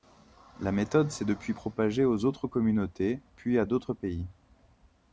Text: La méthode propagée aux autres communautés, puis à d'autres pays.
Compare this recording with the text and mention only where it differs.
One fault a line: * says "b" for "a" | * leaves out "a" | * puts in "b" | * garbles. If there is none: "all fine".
* puts in "s'est depuis"